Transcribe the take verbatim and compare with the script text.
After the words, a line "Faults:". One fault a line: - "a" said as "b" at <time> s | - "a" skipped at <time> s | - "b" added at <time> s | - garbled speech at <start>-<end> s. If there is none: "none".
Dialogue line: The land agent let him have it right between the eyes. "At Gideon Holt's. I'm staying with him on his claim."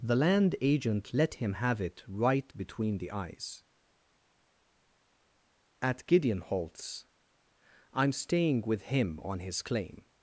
The land agent let him have it right between the eyes. "At Gideon Holt's. I'm staying with him on his claim."
Faults:
none